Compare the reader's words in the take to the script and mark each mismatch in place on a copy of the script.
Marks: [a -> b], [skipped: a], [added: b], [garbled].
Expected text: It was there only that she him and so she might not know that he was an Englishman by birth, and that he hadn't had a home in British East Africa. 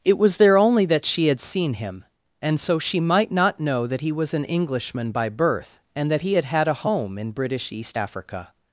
It was there only that she [added: had seen] him and so she might not know that he was an Englishman by birth, and that he [hadn't -> had] had a home in British East Africa.